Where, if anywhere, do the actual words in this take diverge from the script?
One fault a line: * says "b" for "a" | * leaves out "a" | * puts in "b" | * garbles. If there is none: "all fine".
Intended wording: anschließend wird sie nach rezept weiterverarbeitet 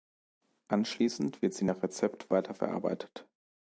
all fine